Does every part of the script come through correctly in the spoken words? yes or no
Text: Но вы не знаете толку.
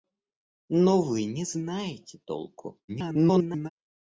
no